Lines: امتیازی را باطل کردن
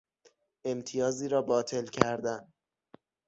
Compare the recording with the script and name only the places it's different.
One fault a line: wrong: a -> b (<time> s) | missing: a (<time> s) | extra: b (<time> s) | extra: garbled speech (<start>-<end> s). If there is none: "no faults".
no faults